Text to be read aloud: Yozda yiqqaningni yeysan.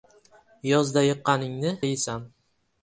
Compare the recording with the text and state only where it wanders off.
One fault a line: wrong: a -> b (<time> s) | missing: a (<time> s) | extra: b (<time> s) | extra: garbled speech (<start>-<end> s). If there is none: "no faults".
no faults